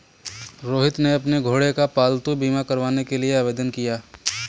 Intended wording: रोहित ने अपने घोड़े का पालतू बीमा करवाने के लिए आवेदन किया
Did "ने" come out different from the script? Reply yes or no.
no